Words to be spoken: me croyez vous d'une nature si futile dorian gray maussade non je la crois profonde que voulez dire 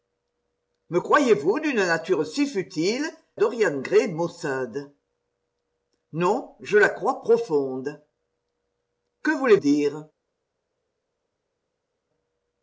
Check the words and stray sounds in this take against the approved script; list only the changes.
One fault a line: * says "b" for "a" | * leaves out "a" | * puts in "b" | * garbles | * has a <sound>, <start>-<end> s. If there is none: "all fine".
all fine